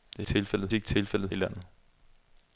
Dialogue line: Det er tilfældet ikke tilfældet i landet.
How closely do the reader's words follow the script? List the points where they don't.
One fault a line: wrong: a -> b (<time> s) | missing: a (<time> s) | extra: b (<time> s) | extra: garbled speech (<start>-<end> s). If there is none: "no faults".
no faults